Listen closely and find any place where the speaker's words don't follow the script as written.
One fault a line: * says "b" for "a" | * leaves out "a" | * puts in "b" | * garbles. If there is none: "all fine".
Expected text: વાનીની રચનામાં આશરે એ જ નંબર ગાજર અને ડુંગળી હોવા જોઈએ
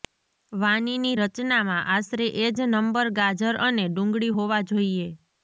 all fine